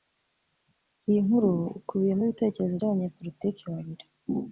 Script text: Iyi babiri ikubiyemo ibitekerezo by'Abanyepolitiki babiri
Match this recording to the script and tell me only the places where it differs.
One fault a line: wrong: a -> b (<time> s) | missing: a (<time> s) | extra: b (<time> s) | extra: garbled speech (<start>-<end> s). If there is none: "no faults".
wrong: babiri -> nkuru (1.2 s)